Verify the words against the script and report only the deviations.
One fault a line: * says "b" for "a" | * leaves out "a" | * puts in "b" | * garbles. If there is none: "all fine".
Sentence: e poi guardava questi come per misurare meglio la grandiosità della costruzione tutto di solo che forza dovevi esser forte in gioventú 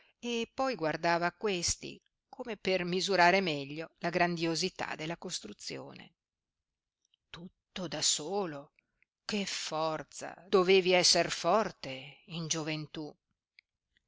* says "da" for "di"